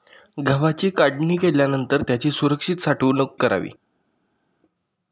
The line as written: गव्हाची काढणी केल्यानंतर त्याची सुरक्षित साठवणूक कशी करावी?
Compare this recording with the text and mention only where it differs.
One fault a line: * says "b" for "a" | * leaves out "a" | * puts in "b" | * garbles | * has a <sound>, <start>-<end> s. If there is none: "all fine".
* leaves out "कशी"